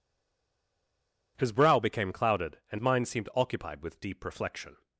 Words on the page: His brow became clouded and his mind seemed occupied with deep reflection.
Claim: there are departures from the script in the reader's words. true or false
true